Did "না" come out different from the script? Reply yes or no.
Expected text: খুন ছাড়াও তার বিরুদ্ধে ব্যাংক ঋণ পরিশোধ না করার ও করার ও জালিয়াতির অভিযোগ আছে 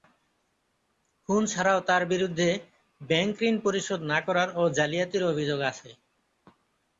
no